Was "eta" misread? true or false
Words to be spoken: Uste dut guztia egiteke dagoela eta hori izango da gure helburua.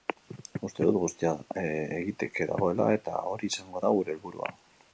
false